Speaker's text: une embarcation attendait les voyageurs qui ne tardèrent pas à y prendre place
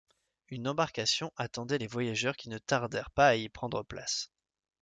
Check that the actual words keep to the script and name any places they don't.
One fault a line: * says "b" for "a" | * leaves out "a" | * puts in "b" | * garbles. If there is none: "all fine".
all fine